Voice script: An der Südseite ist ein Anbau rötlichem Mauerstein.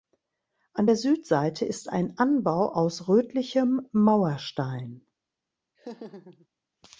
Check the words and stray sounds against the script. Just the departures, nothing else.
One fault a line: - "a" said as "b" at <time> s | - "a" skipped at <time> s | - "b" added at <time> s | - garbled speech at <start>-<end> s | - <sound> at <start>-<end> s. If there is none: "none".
- "aus" added at 2.7 s
- laugh at 5.8-6.5 s